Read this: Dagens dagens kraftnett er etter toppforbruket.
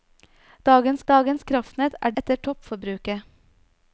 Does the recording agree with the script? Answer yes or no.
yes